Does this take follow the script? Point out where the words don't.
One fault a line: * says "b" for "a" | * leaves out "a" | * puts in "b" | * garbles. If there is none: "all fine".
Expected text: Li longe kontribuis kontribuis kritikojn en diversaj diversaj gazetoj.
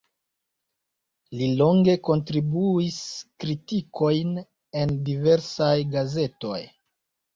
* leaves out "kontribuis"
* leaves out "diversaj"